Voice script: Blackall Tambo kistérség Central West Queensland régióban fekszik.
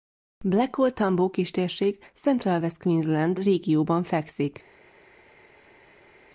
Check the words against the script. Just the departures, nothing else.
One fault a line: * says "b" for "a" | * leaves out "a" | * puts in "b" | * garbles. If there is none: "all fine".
all fine